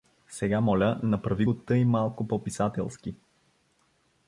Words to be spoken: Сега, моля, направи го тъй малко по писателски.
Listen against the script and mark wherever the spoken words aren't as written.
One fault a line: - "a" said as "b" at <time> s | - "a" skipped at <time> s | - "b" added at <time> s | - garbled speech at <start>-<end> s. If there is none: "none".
none